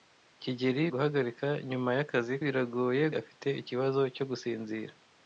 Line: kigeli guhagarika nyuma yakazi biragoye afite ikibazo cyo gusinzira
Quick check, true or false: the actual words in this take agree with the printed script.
true